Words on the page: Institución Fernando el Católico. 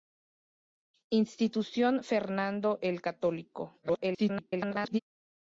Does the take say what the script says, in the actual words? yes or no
no